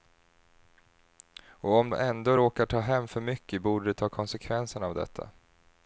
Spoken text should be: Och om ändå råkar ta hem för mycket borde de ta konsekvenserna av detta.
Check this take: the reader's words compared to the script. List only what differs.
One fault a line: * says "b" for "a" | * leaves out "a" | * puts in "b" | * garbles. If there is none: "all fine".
all fine